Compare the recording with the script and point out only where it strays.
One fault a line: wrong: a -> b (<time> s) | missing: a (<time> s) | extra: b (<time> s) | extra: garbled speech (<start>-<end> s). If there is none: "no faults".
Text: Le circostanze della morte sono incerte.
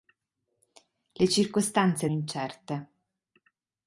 missing: della morte sono (2.1 s)